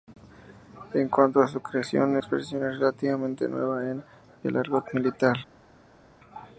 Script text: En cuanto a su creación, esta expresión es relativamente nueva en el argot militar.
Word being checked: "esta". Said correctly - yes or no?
no